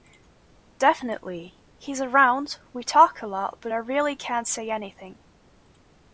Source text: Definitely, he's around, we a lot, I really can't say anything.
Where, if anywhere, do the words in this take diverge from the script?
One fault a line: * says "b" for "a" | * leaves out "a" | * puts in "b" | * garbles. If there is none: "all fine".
* puts in "talk"
* puts in "but"